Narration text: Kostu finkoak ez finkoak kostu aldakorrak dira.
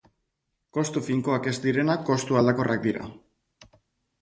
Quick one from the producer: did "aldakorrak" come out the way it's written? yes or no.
yes